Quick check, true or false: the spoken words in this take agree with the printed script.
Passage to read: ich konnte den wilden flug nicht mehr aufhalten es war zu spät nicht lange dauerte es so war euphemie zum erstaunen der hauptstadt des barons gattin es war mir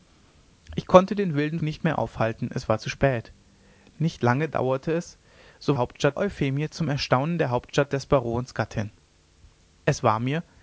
false